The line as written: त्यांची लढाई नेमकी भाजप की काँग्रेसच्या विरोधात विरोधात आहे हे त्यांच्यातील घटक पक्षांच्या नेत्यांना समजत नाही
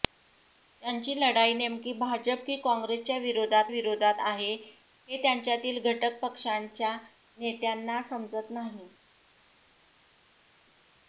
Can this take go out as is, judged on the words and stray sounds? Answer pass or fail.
pass